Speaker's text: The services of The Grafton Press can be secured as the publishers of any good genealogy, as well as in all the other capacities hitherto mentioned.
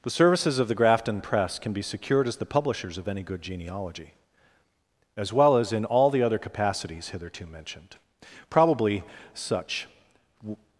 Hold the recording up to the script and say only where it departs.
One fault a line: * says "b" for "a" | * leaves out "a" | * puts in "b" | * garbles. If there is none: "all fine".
* puts in "Probably such"